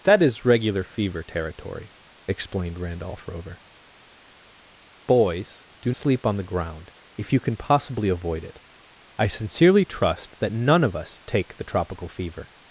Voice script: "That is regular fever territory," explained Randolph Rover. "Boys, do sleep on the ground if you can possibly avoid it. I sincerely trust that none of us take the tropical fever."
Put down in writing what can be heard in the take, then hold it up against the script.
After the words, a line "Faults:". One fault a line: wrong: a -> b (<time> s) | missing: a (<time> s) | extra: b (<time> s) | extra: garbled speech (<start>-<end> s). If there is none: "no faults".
"That is regular fever territory," explained Randolph Rover. "Boys, do sleep on the ground if you can possibly avoid it. I sincerely trust that none of us take the tropical fever."
Faults:
no faults